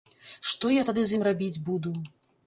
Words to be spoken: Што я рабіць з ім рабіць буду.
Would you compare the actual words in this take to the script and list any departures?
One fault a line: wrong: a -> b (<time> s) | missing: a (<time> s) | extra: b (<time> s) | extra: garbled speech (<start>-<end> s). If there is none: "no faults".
wrong: рабіць -> тады (0.9 s)